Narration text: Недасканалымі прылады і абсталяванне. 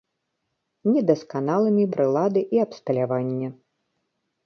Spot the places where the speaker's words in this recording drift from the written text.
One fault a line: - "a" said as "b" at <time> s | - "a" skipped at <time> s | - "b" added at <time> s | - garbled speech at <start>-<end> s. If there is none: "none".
none